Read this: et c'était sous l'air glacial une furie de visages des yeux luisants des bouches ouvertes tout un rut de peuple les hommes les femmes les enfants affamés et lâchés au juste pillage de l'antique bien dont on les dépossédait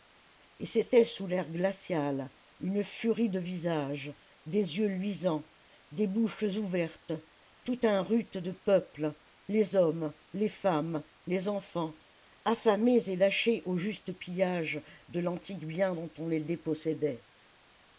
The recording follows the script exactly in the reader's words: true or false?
true